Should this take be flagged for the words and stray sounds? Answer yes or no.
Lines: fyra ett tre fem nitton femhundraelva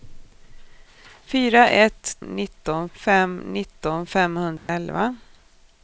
yes